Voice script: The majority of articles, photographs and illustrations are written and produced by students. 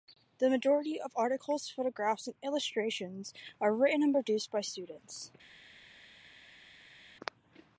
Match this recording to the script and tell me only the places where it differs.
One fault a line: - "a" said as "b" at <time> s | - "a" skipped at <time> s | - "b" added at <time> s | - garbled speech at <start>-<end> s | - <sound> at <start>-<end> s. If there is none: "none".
none